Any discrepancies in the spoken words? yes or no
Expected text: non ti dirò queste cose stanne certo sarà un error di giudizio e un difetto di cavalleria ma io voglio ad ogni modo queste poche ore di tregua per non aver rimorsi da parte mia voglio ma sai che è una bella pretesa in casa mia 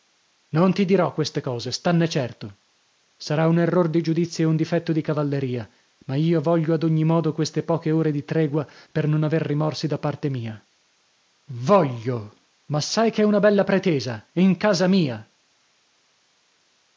no